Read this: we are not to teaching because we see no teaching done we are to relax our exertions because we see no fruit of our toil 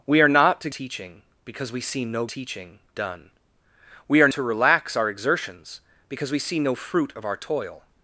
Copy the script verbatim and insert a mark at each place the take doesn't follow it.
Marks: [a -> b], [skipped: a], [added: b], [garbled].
we are not to teaching because we see no teaching done we are to relax our exertions because we see no fruit of our toil